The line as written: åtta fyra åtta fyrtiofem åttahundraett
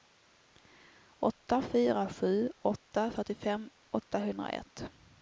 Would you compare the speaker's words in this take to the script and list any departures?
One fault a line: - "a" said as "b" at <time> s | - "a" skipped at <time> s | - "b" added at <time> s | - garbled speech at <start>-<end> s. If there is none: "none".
- "sju" added at 2.1 s